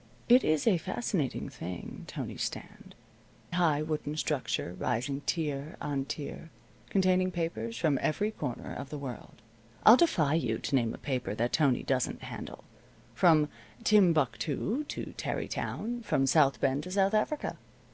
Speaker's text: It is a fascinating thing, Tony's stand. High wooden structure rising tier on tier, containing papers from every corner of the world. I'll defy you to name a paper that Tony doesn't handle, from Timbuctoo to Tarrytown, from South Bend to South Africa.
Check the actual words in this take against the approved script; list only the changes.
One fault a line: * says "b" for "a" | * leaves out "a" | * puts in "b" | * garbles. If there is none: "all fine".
all fine